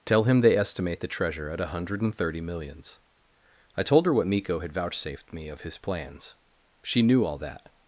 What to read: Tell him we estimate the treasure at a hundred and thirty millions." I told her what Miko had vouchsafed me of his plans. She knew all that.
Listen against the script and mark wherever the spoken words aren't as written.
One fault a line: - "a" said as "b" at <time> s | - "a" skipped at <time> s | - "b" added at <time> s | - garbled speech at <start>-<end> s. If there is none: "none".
- "we" said as "they" at 0.4 s